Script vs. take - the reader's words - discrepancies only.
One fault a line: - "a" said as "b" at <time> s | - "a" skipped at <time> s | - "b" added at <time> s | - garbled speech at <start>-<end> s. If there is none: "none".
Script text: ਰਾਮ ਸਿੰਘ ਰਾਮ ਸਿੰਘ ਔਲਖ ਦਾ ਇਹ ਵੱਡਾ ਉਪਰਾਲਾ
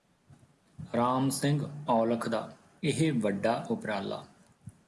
- "ਰਾਮ ਸਿੰਘ" skipped at 1.6 s